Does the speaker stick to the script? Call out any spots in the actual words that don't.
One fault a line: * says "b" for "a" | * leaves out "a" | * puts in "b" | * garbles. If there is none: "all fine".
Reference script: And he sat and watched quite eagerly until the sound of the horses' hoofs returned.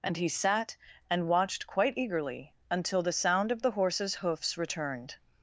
all fine